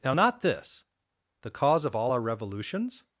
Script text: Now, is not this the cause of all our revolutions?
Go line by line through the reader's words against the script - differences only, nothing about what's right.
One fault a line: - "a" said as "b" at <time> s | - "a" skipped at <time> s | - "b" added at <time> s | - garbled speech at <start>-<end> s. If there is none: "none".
- "is" skipped at 0.1 s